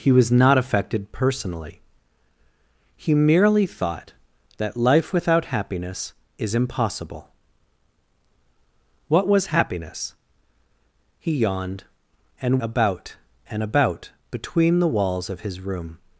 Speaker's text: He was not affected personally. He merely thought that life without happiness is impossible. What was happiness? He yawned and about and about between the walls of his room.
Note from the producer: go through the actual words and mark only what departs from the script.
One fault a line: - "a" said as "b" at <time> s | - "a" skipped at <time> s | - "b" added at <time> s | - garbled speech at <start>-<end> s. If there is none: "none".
none